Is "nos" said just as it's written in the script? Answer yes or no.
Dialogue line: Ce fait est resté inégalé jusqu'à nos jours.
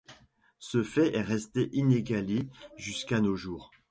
yes